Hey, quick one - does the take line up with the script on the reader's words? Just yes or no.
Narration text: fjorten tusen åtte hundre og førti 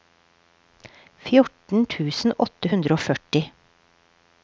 yes